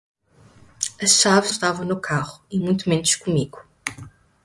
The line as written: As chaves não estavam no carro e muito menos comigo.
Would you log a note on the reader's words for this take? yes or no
yes